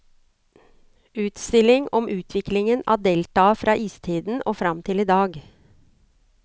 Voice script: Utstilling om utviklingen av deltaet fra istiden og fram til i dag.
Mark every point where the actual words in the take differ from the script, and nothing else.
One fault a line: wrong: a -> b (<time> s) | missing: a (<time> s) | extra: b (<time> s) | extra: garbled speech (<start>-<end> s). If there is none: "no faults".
no faults